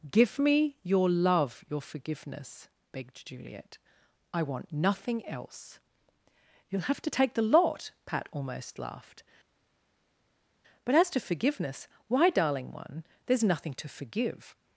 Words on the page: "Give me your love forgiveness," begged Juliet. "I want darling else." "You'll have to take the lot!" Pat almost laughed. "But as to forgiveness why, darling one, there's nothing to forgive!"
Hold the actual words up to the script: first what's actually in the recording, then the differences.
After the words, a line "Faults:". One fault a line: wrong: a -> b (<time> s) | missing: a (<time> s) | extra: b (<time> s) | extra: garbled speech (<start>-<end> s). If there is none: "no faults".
"Give me your love your forgiveness," begged Juliet. "I want nothing else." "You'll have to take the lot!" Pat almost laughed. "But as to forgiveness why, darling one, there's nothing to forgive!"
Faults:
extra: your (1.7 s)
wrong: darling -> nothing (4.7 s)